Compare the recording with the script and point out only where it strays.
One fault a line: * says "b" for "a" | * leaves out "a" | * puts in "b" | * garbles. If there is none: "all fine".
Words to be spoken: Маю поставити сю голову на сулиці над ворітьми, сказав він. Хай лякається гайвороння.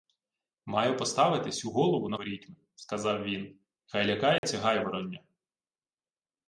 * leaves out "сулиці над"